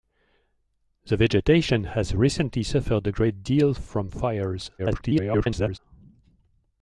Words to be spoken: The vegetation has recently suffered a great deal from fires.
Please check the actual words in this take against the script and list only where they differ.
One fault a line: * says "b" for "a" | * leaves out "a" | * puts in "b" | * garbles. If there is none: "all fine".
* garbles